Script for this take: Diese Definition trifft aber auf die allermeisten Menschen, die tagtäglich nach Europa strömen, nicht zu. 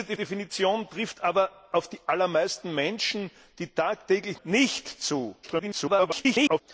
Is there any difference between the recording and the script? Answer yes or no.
yes